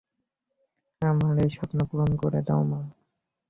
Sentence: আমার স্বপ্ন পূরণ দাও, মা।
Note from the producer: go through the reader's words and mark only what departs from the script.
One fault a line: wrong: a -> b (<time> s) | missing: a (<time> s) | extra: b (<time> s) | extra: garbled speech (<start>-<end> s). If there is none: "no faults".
extra: এই (1.4 s)
extra: করে (2.1 s)